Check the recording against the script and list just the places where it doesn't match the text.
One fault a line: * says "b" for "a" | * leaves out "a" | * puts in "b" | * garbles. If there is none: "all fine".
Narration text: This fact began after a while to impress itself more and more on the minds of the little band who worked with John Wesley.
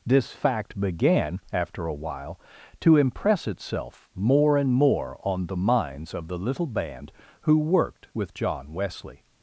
all fine